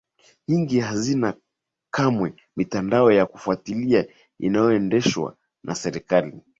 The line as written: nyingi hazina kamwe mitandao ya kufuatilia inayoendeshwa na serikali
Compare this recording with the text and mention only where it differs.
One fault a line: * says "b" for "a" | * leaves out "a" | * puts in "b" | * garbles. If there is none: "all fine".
all fine